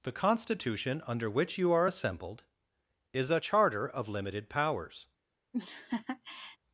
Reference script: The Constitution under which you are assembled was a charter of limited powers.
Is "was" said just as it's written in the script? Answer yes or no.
no